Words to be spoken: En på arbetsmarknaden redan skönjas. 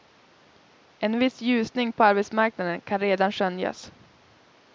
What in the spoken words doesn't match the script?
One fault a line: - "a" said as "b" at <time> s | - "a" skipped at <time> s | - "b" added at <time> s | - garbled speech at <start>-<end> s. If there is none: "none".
- "viss ljusning" added at 1.2 s
- "kan" added at 2.8 s